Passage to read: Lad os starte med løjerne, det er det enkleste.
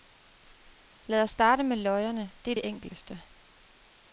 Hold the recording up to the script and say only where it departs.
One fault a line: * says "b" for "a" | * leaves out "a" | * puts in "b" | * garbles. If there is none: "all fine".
all fine